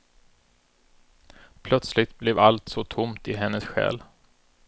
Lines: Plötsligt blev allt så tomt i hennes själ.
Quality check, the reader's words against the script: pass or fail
pass